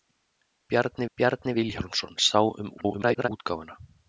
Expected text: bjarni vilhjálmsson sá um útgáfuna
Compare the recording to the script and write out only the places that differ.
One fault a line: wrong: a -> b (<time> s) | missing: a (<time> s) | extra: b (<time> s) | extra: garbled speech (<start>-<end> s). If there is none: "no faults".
extra: bjarni (1.1 s)
extra: garbled speech (2.8-3.3 s)